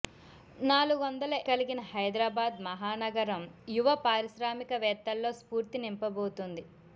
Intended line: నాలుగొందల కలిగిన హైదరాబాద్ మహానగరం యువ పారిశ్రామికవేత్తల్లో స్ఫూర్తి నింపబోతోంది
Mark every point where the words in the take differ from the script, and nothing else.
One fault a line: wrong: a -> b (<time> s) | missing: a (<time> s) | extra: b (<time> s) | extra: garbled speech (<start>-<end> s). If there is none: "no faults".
no faults